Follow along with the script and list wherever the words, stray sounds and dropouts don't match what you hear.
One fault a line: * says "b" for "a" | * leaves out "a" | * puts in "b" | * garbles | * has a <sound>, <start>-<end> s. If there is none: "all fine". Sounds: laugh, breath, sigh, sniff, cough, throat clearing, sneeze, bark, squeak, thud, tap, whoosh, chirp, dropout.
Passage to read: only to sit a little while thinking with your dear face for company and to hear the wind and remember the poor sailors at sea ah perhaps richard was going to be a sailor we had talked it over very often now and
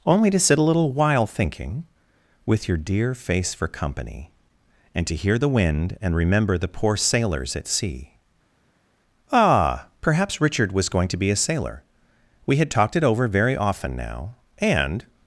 all fine